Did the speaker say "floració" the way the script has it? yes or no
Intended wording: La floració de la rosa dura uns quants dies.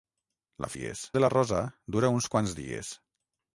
no